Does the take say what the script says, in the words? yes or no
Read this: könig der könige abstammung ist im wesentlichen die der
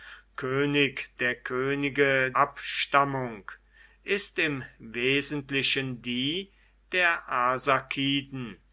yes